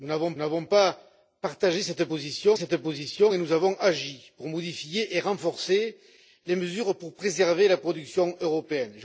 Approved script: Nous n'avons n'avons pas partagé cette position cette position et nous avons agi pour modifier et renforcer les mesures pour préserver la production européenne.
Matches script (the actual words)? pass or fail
pass